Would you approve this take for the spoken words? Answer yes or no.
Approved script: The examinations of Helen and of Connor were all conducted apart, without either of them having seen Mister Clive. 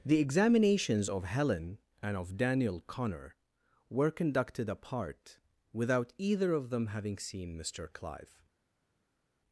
no